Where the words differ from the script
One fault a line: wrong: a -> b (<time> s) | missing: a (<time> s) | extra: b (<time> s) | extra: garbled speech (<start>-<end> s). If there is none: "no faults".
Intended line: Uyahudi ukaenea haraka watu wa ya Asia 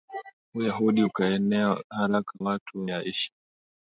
no faults